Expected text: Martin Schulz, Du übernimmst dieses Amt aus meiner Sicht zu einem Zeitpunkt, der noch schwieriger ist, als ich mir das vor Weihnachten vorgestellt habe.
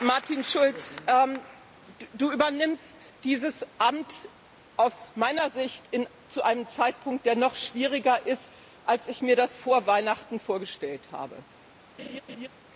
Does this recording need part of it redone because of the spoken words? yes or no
no